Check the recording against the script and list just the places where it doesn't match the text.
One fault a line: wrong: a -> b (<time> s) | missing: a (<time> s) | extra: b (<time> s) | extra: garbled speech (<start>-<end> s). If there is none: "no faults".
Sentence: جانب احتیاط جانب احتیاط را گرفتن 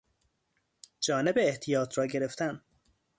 missing: جانب احتیاط (2.0 s)